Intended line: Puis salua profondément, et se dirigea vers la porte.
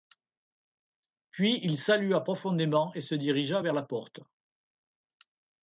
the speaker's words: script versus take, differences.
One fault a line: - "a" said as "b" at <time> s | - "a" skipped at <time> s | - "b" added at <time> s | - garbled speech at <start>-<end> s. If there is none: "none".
- "il" added at 1.6 s